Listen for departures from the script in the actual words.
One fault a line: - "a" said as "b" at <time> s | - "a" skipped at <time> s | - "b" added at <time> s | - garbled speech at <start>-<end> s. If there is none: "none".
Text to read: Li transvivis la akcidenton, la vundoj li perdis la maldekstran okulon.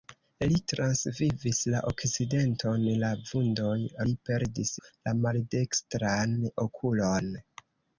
none